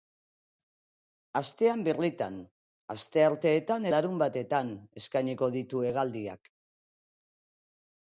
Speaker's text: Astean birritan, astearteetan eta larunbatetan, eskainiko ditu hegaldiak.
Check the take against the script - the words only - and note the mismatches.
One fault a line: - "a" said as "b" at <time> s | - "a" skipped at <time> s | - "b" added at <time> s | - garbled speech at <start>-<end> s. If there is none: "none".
- "eta" skipped at 3.9 s